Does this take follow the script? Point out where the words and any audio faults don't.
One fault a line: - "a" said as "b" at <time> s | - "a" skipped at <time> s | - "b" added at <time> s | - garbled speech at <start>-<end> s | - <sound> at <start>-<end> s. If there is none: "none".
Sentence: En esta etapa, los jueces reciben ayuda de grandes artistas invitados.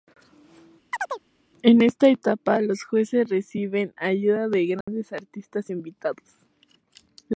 - chirp at 0.9-1.2 s
- dropout at 4.8-4.9 s